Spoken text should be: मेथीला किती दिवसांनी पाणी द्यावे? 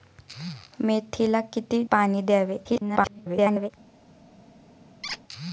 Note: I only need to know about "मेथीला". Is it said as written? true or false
true